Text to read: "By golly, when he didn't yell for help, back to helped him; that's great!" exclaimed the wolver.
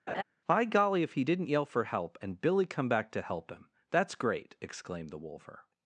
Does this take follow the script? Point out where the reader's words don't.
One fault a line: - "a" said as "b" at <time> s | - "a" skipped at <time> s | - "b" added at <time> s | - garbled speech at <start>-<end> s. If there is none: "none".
- "when" said as "if" at 1.0 s
- "and Billy come" added at 2.2 s
- "helped" said as "help" at 3.2 s